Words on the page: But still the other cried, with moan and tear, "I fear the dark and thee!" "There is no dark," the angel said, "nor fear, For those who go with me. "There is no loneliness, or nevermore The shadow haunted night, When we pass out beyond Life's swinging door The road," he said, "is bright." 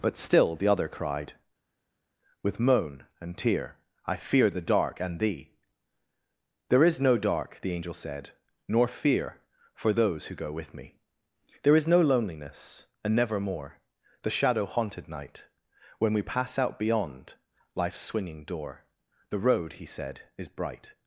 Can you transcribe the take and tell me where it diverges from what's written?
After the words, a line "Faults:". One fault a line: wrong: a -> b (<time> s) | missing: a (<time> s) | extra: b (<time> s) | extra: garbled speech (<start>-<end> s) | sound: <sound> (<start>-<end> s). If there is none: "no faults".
But still the other cried, with moan and tear, "I fear the dark and thee!" "There is no dark," the angel said, "nor fear, For those who go with me. "There is no loneliness, and nevermore The shadow haunted night, When we pass out beyond Life's swinging door The road," he said, "is bright."
Faults:
wrong: or -> and (13.0 s)